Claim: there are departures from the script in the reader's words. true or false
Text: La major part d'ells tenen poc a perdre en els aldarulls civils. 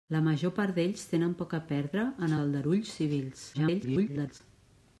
true